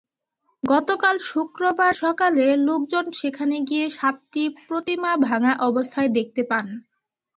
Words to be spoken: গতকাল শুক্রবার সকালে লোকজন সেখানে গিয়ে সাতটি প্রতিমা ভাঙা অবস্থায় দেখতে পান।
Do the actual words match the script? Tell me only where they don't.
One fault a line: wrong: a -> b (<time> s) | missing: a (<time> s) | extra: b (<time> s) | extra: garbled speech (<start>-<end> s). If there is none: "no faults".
no faults